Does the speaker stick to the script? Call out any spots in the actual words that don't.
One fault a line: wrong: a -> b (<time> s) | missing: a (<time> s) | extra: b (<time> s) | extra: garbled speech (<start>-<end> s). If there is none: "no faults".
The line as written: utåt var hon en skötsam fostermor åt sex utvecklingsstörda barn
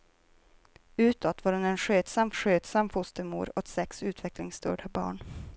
extra: skötsam (2.3 s)